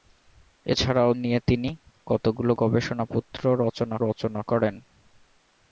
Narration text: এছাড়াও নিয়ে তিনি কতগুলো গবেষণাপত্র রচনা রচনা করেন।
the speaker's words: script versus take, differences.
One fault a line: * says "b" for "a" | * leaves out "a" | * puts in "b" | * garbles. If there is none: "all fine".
all fine